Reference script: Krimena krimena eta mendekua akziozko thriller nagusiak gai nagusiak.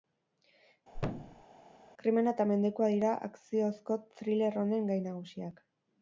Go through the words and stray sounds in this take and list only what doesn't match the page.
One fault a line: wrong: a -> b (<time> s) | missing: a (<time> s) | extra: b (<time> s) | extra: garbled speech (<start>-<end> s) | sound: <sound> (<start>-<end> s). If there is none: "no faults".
sound: thud (0.9-1.4 s)
missing: krimena (2.3 s)
extra: dira (3.0 s)
wrong: nagusiak -> honen (4.7 s)